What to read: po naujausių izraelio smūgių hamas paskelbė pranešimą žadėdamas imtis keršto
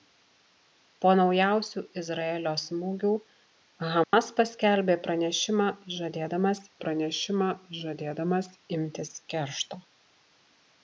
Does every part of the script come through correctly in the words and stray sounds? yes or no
no